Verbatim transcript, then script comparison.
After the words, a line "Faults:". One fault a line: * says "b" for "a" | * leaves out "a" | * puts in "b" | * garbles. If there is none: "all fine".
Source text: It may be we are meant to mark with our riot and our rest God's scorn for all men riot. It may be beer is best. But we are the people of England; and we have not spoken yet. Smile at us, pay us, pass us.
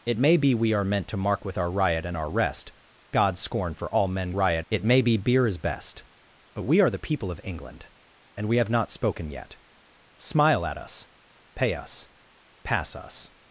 It may be we are meant to mark with our riot and our rest God's scorn for all men riot. It may be beer is best. But we are the people of England; and we have not spoken yet. Smile at us, pay us, pass us.
Faults:
all fine